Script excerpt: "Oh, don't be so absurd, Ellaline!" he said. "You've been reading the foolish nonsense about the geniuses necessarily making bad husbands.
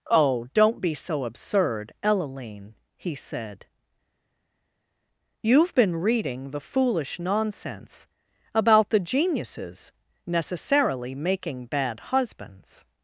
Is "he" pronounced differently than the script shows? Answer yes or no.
no